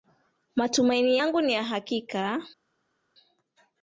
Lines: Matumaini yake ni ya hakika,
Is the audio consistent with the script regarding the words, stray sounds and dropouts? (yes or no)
no